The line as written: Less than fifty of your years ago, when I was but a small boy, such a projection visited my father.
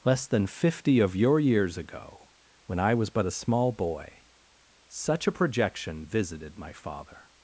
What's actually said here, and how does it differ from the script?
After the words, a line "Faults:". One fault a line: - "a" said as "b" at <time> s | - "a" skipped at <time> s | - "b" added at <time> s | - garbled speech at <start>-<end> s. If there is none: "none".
Less than fifty of your years ago, when I was but a small boy, such a projection visited my father.
Faults:
none